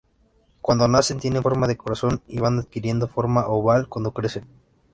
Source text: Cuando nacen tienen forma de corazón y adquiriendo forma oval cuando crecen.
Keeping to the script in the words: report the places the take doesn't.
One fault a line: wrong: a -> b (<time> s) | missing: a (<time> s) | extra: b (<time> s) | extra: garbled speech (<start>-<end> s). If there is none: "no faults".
extra: van (2.4 s)